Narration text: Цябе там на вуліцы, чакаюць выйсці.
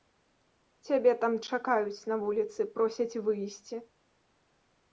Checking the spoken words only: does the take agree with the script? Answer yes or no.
no